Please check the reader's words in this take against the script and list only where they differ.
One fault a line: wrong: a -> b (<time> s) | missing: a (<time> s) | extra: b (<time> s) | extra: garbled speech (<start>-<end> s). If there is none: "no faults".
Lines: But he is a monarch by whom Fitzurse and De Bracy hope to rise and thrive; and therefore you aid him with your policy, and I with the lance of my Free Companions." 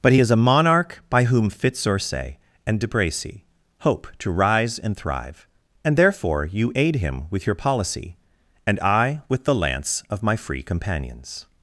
no faults